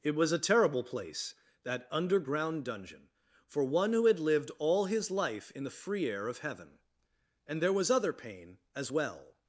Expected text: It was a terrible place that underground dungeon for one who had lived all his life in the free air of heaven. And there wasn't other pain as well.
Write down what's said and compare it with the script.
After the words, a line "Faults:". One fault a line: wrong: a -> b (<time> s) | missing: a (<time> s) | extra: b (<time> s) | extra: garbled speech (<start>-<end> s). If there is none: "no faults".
It was a terrible place that underground dungeon for one who had lived all his life in the free air of heaven. And there was other pain as well.
Faults:
wrong: wasn't -> was (7.7 s)